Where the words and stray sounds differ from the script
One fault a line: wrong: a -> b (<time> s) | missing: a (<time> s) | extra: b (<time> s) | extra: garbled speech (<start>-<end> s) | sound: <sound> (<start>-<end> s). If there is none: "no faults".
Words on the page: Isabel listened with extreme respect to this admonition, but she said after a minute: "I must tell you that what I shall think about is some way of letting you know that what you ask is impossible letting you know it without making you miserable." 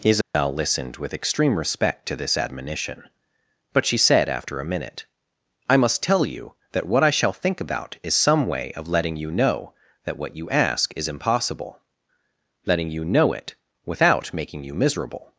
sound: dropout (0.2-0.3 s)